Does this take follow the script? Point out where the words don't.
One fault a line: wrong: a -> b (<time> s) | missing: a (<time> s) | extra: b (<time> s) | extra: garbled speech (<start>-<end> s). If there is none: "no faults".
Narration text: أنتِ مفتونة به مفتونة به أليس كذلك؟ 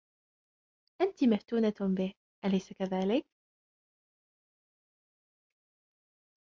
missing: مفتونة به (2.1 s)